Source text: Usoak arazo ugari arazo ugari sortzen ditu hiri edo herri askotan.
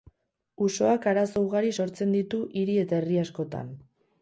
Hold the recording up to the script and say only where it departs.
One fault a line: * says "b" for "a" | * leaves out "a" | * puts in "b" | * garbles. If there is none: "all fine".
* leaves out "arazo ugari"
* says "eta" for "edo"